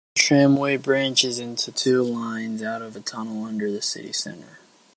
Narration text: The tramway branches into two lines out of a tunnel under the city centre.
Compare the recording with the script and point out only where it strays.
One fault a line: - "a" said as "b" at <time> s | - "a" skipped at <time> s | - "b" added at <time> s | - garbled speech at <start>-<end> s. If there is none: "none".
none